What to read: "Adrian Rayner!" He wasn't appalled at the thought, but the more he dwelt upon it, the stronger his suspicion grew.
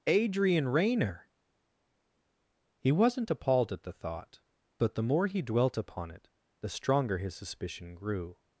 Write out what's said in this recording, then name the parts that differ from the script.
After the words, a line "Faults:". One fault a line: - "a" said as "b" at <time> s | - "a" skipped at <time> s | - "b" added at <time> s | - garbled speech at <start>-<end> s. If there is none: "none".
"Adrian Rayner!" He wasn't appalled at the thought, but the more he dwelt upon it, the stronger his suspicion grew.
Faults:
none